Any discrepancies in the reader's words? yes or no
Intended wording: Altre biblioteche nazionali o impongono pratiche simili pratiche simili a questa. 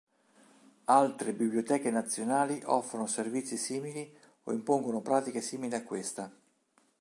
yes